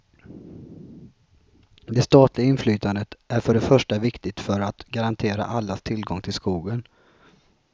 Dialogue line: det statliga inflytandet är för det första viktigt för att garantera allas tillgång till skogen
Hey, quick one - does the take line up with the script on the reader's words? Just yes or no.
yes